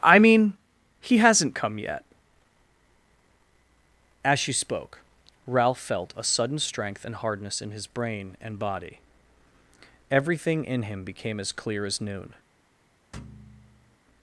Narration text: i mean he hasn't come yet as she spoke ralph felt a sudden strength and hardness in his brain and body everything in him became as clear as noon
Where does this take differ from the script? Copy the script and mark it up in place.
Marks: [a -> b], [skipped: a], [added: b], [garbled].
i mean he hasn't come yet as she spoke ralph felt a sudden strength and hardness in his brain and body everything in him became as clear as noon